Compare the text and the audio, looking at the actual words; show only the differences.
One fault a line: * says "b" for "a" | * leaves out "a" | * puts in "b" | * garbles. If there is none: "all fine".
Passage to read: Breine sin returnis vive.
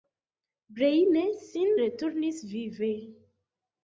all fine